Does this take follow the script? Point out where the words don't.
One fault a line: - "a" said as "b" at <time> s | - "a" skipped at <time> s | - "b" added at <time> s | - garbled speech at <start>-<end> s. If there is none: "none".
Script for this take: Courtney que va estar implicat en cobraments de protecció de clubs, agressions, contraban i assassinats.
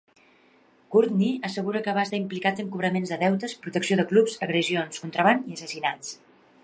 - "assegura" added at 1.5 s
- "deutes" added at 3.2 s